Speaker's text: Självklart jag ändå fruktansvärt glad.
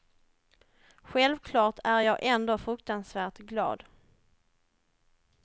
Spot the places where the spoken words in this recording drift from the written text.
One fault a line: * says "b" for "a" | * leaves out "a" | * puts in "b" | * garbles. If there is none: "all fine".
* puts in "är"